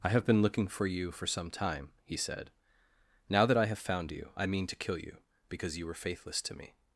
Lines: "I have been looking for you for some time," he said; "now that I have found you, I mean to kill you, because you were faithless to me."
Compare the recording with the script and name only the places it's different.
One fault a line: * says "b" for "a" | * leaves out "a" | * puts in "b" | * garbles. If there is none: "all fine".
all fine